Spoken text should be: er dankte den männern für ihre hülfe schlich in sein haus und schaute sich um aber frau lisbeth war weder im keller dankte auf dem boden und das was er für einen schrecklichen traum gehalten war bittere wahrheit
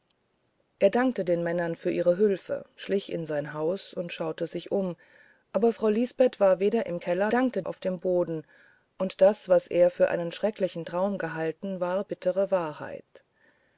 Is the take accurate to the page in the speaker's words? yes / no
yes